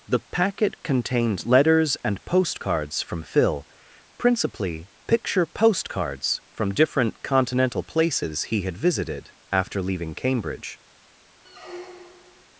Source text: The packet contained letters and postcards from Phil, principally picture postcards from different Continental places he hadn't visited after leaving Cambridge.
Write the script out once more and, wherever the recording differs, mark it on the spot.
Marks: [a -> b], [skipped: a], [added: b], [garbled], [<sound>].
The packet contained letters and postcards from Phil, principally picture postcards from different Continental places he [hadn't -> had] visited after leaving Cambridge. [squeak]